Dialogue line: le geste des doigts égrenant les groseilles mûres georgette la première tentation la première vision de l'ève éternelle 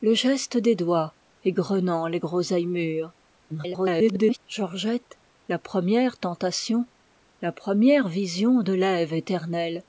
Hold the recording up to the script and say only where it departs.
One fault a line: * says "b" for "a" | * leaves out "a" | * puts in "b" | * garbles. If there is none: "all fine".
* garbles